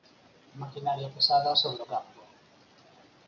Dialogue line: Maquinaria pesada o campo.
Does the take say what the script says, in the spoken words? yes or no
no